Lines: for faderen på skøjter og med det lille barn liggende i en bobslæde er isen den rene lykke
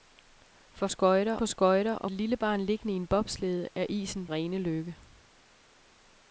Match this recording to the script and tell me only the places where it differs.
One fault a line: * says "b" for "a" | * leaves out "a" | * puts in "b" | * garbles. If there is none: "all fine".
* says "skøjter" for "faderen"
* leaves out "med"
* leaves out "den"